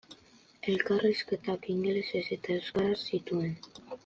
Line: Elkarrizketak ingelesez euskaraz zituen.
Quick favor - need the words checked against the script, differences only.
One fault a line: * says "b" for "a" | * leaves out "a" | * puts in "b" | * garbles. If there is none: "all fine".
* puts in "eta"